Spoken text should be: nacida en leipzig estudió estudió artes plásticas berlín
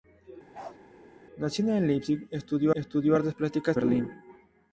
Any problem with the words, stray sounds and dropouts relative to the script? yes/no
yes